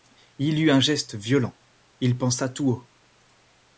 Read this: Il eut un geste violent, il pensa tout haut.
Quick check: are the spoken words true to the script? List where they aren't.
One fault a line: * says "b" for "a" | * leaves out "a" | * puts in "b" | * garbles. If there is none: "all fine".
all fine